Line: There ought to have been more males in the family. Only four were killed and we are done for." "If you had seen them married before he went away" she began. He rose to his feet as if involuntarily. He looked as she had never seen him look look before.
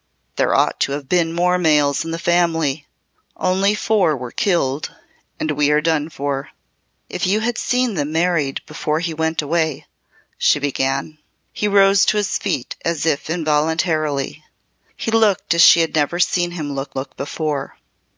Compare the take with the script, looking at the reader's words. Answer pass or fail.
pass